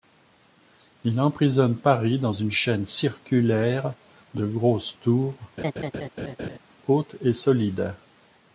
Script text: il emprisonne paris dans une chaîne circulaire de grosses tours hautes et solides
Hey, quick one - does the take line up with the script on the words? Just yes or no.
yes